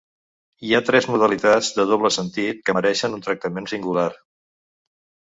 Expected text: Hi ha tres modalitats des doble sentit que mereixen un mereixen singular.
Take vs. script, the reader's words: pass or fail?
fail